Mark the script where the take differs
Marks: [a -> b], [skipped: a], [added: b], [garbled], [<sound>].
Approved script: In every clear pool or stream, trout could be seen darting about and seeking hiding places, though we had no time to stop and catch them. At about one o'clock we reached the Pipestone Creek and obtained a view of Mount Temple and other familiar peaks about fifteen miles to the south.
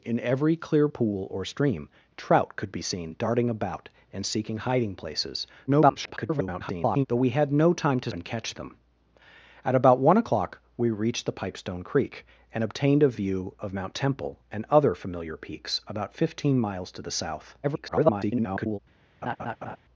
In every clear pool or stream, trout could be seen darting about and seeking hiding places, [garbled] though we had no time to [skipped: stop] and catch them. At about one o'clock we reached the Pipestone Creek and obtained a view of Mount Temple and other familiar peaks about fifteen miles to the south. [garbled] [laugh]